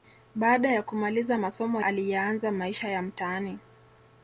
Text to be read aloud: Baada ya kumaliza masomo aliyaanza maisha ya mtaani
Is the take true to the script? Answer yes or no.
yes